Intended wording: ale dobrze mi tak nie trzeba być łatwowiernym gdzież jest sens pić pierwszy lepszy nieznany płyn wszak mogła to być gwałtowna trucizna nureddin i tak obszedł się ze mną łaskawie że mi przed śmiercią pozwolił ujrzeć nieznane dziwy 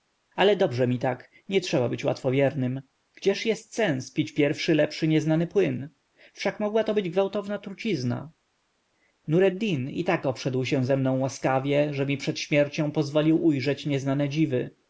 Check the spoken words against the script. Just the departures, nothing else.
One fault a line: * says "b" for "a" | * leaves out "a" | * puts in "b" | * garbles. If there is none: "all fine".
all fine